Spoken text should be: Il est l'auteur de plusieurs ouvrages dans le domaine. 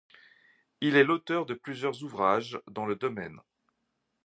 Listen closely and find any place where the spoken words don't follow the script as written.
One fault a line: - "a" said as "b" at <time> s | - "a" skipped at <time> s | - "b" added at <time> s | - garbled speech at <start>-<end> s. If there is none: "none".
none